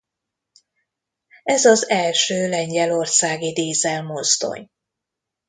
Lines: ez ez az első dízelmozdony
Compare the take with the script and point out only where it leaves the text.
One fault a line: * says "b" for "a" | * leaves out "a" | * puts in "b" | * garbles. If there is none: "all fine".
* leaves out "ez"
* puts in "lengyelországi"